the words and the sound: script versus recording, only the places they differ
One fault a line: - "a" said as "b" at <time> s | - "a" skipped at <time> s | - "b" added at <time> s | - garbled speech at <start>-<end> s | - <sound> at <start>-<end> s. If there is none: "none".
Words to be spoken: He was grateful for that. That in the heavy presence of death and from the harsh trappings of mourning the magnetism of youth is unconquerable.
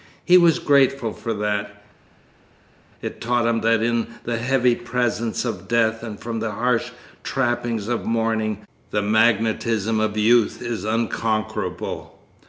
- "It taught him" added at 3.0 s